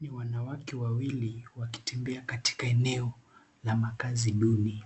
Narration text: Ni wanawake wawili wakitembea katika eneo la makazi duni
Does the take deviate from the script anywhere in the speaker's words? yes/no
no